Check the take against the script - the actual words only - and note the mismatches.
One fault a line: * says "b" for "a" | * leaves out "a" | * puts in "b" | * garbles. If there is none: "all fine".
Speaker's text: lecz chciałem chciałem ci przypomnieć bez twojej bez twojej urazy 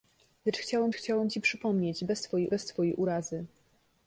all fine